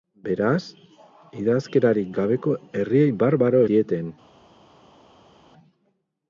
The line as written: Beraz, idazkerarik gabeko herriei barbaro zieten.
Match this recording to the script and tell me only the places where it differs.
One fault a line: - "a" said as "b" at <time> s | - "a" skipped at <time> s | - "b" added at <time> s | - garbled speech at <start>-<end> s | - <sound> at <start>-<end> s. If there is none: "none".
none